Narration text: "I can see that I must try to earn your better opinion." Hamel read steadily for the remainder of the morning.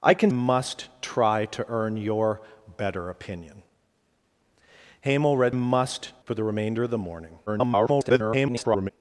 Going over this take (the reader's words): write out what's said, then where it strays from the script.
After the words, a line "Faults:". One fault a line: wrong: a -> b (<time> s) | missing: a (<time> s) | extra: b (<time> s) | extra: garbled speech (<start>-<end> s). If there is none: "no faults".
"I can must try to earn your better opinion." Hamel read must for the remainder of the morning. [garbled]
Faults:
missing: see that I (0.3 s)
wrong: steadily -> must (5.5 s)
extra: garbled speech (7.5-8.9 s)